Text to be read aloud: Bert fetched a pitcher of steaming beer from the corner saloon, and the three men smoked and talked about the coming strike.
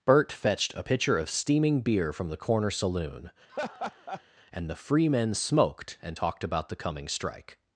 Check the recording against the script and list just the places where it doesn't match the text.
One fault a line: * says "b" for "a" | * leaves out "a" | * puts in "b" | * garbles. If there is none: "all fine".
* says "free" for "three"